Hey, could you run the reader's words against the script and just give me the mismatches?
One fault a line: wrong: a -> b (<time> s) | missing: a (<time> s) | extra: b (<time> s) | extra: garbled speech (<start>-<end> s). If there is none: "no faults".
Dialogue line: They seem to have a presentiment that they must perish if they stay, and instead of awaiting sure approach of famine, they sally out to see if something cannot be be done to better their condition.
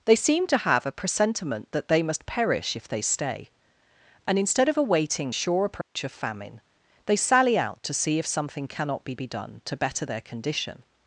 no faults